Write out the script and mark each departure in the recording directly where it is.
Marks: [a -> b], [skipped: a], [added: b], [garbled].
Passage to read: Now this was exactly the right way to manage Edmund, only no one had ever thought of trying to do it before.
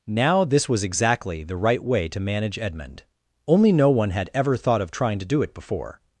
Now this was exactly the right way to manage Edmund, only no one had ever thought of trying to do it before.